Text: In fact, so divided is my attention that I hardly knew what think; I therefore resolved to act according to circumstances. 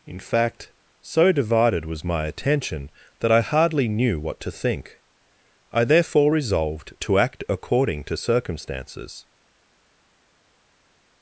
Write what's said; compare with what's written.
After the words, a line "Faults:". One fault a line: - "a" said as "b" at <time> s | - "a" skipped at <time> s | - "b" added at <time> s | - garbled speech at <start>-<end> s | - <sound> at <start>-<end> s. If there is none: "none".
In fact, so divided was my attention that I hardly knew what to think; I therefore resolved to act according to circumstances.
Faults:
- "is" said as "was" at 1.9 s
- "to" added at 4.4 s